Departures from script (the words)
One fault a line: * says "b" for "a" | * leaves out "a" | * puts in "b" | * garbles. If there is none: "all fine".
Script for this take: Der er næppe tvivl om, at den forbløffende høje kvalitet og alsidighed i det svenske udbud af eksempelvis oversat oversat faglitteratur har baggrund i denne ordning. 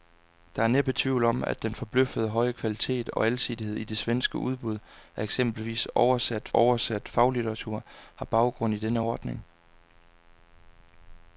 all fine